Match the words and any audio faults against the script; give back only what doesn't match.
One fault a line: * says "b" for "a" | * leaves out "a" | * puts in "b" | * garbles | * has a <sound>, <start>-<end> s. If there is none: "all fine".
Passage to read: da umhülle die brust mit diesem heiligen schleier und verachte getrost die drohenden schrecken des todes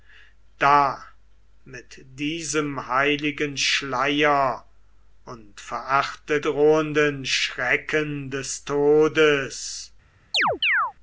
* leaves out "umhülle die brust"
* leaves out "getrost die"
* has a chirp, 10.3-10.9 s